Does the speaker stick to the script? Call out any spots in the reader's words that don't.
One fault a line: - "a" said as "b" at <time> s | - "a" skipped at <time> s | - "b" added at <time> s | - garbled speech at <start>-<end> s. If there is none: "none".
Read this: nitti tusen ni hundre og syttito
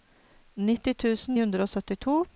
- "ni" skipped at 1.4 s